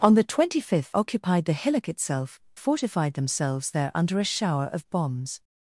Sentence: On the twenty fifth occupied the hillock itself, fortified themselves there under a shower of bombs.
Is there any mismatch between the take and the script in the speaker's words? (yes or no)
no